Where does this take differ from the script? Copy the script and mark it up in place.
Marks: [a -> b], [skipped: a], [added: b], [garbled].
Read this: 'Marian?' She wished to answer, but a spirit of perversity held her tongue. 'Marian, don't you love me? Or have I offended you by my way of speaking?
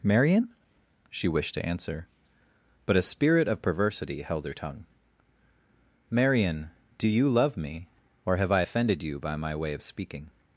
'Marian?' She wished to answer, but a spirit of perversity held her tongue. 'Marian, [don't -> do] you love me? Or have I offended you by my way of speaking?